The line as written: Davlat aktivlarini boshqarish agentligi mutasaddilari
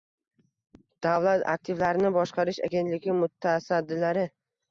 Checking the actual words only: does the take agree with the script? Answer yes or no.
yes